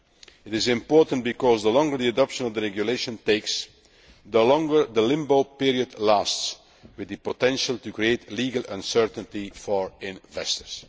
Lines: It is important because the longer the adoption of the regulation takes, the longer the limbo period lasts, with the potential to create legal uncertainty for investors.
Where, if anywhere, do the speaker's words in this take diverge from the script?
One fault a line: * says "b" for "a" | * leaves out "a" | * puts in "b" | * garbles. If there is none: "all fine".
all fine